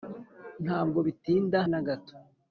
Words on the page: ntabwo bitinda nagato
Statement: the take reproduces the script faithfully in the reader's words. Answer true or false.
true